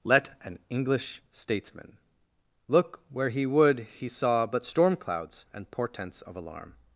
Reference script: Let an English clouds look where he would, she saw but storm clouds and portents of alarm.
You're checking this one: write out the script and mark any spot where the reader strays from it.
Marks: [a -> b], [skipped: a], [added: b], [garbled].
Let an English [clouds -> statesman] look where he would, [she -> he] saw but storm clouds and portents of alarm.